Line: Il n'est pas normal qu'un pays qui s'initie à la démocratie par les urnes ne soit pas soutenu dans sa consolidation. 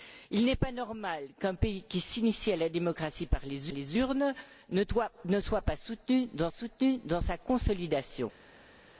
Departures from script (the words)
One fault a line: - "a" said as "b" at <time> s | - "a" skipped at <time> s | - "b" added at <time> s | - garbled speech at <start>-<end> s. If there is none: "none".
- "les" added at 3.7 s
- "soutenu dans" added at 6.5 s